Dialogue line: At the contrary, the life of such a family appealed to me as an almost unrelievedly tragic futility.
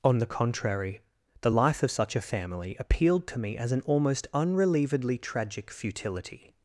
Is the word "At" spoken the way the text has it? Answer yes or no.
no